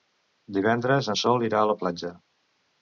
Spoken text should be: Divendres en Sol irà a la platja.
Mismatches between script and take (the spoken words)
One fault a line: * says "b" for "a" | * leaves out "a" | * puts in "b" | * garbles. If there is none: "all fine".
all fine